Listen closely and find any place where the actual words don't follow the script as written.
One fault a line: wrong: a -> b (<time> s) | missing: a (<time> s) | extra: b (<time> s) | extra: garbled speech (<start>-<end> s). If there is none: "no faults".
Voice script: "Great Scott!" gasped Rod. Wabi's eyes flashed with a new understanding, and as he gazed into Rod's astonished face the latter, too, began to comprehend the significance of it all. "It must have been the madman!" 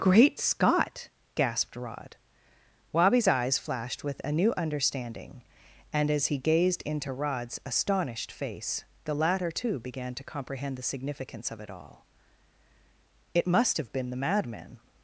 no faults